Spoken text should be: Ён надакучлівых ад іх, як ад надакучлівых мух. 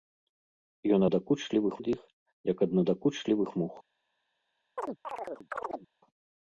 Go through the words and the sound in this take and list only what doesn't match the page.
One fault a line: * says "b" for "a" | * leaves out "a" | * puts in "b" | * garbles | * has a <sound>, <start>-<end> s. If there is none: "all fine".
* has a chirp, 4.8-5.9 s